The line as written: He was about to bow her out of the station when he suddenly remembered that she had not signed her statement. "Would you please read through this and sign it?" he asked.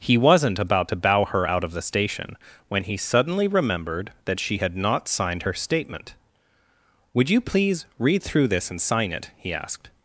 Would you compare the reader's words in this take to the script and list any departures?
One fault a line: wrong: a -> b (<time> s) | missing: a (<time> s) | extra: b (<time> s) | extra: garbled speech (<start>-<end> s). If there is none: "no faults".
wrong: was -> wasn't (0.2 s)